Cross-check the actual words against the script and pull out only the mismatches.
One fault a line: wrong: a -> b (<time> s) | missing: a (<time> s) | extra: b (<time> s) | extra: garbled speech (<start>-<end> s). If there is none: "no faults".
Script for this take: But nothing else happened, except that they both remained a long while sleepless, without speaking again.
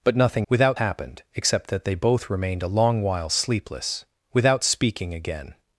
wrong: else -> without (0.5 s)